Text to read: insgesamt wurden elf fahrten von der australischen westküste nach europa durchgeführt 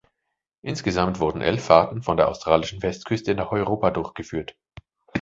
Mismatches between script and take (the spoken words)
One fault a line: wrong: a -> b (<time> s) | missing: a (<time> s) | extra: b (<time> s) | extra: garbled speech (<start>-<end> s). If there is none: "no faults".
no faults